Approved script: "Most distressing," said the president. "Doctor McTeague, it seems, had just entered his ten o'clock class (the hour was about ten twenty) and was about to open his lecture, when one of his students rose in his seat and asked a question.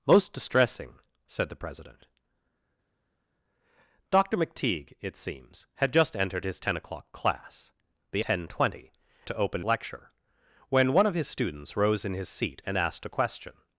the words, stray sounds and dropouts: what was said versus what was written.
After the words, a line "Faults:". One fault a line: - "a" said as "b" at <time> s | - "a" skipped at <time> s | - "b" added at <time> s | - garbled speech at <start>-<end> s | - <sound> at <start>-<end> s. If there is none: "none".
"Most distressing," said the president. "Doctor McTeague, it seems, had just entered his ten o'clock class (the ten twenty) to open lecture, when one of his students rose in his seat and asked a question.
Faults:
- "hour was about" skipped at 8.2 s
- "and was about" skipped at 8.9 s
- "his" skipped at 9.6 s